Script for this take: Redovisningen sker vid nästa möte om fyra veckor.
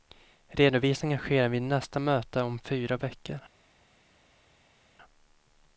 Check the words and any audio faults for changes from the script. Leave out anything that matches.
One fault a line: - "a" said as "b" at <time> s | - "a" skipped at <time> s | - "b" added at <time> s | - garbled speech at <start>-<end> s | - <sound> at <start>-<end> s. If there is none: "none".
none